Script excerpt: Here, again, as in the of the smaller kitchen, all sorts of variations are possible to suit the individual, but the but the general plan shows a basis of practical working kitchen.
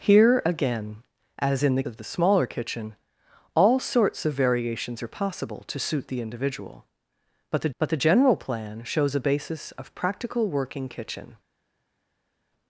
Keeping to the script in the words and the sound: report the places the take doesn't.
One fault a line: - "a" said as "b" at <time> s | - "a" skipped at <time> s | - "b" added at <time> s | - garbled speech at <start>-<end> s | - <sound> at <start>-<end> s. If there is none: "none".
none